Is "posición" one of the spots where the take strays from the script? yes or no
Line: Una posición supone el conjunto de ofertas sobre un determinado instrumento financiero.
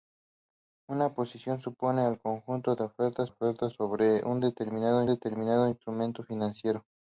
no